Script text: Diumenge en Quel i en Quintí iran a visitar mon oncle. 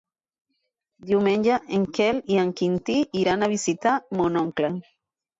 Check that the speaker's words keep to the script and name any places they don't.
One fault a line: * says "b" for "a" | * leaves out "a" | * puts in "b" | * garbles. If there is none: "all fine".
all fine